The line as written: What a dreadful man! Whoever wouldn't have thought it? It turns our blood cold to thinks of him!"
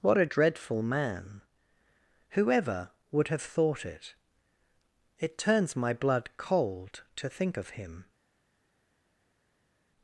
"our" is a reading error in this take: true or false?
true